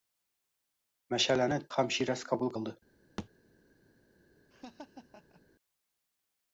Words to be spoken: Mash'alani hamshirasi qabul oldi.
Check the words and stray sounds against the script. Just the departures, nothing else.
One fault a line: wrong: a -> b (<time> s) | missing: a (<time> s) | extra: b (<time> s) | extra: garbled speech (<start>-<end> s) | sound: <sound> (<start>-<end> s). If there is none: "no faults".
sound: thud (3.2-3.3 s)
sound: laugh (4.5-5.4 s)